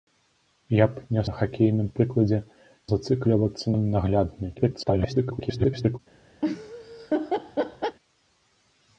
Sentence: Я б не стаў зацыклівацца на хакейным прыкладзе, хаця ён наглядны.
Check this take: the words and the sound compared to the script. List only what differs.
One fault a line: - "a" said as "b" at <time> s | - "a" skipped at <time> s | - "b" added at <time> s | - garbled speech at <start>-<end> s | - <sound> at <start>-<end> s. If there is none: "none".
- "стаў зацыклівацца" skipped at 1.2 s
- "хаця" said as "зацыклівацца" at 2.9 s
- garbled speech at 4.6-6.0 s
- laugh at 6.4-8.0 s